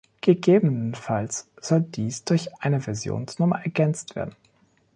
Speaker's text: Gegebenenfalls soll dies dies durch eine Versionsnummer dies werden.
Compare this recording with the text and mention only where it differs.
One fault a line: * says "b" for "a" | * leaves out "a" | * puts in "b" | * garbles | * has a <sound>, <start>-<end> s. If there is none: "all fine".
* leaves out "dies"
* says "ergänzt" for "dies"